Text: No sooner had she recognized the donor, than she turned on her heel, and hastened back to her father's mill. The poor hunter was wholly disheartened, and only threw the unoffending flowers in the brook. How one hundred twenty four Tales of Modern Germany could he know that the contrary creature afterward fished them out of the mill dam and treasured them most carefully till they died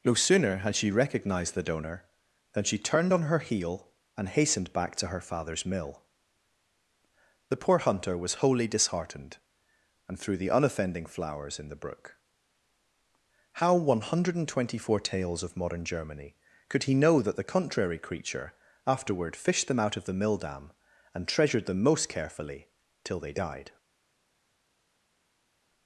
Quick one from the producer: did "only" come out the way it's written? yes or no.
no